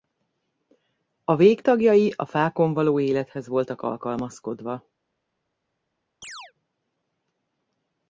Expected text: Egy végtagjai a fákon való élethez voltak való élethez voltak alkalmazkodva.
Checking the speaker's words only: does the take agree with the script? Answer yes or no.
no